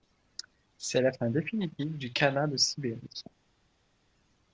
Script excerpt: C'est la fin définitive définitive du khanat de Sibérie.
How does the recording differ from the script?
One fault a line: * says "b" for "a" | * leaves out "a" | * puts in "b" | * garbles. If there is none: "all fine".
* leaves out "définitive"